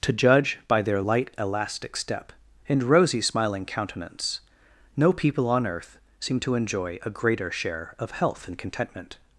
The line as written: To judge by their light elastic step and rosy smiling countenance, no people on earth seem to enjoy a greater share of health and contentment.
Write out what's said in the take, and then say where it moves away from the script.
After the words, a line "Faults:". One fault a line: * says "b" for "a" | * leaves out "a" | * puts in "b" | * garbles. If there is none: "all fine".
To judge by their light elastic step and rosy smiling countenance, no people on earth seem to enjoy a greater share of health and contentment.
Faults:
all fine